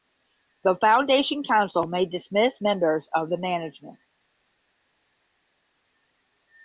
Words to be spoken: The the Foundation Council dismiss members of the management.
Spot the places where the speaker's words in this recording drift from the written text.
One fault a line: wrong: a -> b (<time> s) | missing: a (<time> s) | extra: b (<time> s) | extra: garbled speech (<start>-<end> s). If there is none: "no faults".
missing: the (0.8 s)
extra: may (1.8 s)